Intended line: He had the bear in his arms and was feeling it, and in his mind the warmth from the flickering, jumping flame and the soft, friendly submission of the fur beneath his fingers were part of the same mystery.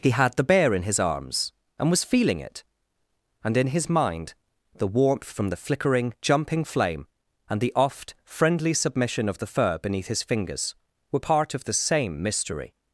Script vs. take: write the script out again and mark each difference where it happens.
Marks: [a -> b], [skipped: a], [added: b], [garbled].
He had the bear in his arms and was feeling it, and in his mind the warmth from the flickering, jumping flame and the [soft, -> oft] friendly submission of the fur beneath his fingers were part of the same mystery.